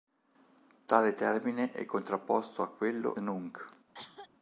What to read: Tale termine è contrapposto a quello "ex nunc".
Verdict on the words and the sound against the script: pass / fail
fail